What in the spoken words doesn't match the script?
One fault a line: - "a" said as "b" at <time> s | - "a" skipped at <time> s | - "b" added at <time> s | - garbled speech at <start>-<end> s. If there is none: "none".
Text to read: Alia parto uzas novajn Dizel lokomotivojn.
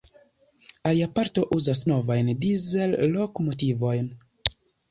none